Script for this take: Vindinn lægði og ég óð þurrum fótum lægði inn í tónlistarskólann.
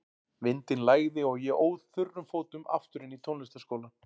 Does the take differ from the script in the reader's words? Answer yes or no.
yes